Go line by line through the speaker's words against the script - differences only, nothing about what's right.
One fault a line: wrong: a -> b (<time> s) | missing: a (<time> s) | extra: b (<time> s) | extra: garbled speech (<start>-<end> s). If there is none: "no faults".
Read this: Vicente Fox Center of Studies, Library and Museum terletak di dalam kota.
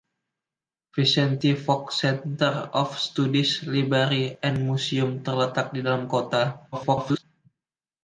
extra: garbled speech (6.7-7.2 s)